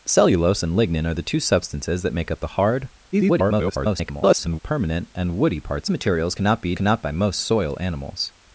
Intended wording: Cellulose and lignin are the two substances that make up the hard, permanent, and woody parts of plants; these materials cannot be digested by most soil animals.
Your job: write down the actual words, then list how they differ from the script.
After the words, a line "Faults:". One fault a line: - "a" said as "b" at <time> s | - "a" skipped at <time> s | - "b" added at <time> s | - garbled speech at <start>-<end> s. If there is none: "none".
Cellulose and lignin are the two substances that make up the hard, [garbled] permanent, and woody parts materials cannot be cannot by most soil animals.
Faults:
- garbled speech at 3.1-4.6 s
- "of plants these" skipped at 5.9 s
- "digested" said as "cannot" at 6.7 s